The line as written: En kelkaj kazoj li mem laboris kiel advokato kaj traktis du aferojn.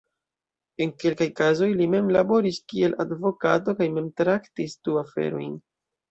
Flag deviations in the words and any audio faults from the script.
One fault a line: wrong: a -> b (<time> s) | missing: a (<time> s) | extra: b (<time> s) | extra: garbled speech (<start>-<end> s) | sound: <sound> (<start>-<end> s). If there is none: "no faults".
extra: mem (4.0 s)